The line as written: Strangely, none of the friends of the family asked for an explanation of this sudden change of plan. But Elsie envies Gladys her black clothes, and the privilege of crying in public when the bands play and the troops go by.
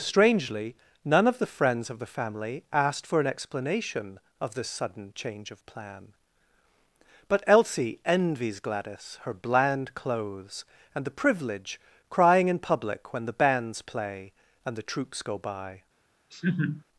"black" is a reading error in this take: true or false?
true